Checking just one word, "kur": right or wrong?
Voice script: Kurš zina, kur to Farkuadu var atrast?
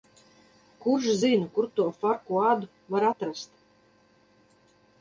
right